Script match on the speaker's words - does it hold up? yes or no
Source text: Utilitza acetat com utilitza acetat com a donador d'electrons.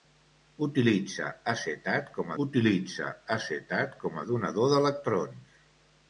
yes